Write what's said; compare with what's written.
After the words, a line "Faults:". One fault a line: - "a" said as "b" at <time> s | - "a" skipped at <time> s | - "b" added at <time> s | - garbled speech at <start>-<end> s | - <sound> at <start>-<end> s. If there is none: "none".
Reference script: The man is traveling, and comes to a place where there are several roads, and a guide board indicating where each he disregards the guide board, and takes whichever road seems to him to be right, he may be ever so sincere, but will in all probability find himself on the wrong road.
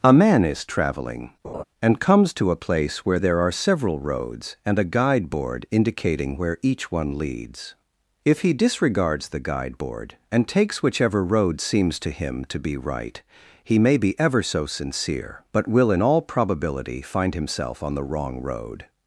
A man is traveling, and comes to a place where there are several roads, and a guide board indicating where each one leads. If he disregards the guide board, and takes whichever road seems to him to be right, he may be ever so sincere, but will in all probability find himself on the wrong road.
Faults:
- "The" said as "A" at 0.0 s
- laugh at 1.4-1.6 s
- "one leads If" added at 6.9 s